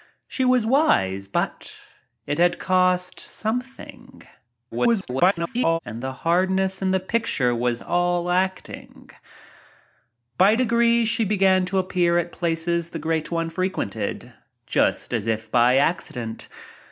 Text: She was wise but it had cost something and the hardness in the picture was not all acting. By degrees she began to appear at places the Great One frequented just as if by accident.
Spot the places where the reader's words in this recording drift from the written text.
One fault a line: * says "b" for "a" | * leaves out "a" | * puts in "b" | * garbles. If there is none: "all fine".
* garbles
* leaves out "not"